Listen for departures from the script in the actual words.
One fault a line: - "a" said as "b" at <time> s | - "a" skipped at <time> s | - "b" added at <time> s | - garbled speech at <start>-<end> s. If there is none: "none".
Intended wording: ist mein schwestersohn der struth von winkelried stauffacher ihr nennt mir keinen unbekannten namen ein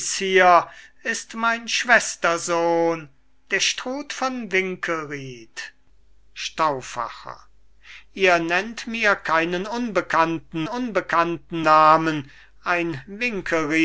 - "unbekannten" added at 10.7 s